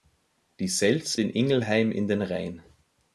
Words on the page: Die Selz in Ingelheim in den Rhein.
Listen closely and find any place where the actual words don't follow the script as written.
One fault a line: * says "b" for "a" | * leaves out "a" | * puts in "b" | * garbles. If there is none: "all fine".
all fine